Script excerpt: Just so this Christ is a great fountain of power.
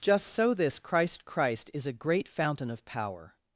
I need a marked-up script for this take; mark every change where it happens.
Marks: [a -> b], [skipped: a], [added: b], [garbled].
Just so this Christ [added: Christ] is a great fountain of power.